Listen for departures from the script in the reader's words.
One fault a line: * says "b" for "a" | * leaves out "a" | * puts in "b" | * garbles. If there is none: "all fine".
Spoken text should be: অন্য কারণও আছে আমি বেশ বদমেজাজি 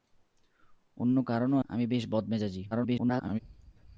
* leaves out "আছে"
* garbles